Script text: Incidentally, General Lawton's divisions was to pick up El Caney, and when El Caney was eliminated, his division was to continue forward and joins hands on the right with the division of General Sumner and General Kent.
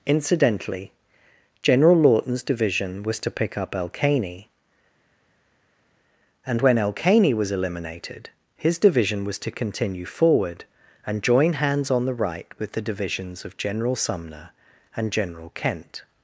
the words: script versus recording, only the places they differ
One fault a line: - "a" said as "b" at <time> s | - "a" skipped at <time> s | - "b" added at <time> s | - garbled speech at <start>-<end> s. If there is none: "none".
- "divisions" said as "division" at 2.4 s
- "joins" said as "join" at 11.2 s
- "division" said as "divisions" at 12.8 s